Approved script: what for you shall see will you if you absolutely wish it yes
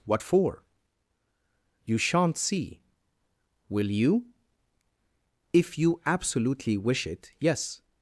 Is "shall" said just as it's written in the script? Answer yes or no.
no